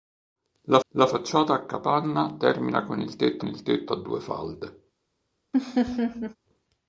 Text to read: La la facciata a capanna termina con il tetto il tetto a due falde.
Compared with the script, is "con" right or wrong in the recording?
right